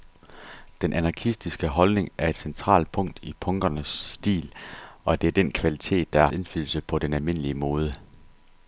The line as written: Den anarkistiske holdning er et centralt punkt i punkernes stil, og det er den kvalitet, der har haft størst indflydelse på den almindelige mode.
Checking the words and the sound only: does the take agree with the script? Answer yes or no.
no